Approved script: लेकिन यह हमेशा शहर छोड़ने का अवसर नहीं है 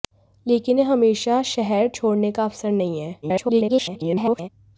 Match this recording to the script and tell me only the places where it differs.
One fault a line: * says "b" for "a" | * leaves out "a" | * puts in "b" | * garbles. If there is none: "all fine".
* garbles